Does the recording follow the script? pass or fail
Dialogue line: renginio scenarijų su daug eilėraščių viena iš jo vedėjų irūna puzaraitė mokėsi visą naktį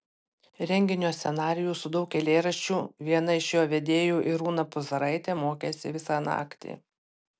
pass